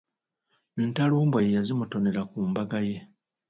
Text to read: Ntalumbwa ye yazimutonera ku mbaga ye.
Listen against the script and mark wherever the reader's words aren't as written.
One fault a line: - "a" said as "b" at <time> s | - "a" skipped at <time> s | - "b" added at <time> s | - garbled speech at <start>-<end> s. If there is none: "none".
none